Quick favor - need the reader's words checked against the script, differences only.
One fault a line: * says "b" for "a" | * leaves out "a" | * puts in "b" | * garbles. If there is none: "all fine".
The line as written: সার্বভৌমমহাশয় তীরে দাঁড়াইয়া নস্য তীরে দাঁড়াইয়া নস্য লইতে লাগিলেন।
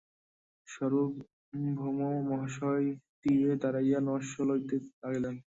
* leaves out "তীরে দাঁড়াইয়া নস্য"